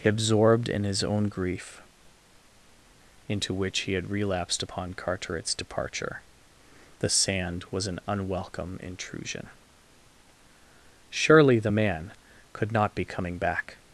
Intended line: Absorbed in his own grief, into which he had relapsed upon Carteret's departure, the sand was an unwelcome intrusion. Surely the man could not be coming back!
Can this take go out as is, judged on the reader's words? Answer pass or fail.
pass